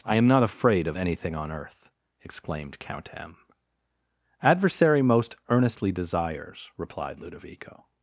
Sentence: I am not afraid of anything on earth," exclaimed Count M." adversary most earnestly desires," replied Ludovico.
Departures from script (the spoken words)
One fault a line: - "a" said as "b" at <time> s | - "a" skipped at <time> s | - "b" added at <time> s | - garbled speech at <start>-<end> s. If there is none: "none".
none